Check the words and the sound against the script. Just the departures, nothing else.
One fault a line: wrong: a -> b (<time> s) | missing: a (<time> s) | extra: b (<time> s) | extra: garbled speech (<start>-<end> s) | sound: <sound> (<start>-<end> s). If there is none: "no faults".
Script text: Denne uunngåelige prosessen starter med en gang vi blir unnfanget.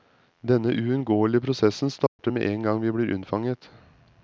sound: dropout (2.1-2.2 s)